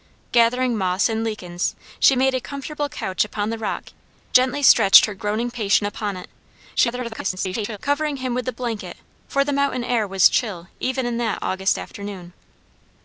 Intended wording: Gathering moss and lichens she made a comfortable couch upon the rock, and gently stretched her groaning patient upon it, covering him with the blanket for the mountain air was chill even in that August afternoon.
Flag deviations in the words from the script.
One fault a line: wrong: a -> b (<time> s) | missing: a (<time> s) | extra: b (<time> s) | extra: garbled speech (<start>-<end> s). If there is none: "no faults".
missing: and (3.9 s)
extra: garbled speech (6.8-7.8 s)